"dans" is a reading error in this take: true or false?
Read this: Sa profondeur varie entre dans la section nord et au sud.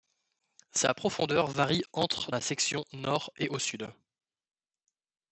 true